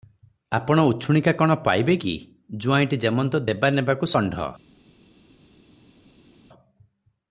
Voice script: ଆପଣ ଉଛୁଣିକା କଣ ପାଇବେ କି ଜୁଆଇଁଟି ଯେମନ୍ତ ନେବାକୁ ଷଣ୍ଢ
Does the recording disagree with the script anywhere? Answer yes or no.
yes